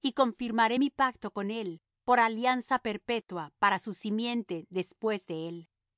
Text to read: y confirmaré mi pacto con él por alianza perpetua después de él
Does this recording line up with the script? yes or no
no